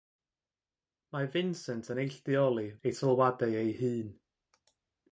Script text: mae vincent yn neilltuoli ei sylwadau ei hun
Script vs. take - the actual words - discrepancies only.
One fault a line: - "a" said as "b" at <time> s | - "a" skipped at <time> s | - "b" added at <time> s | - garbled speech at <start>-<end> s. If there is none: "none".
none